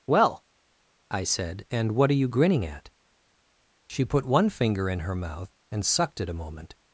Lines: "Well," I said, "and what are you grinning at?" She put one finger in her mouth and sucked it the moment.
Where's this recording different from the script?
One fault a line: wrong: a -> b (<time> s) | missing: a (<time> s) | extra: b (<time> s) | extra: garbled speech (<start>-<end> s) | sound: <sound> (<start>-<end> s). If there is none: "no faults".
wrong: the -> a (6.3 s)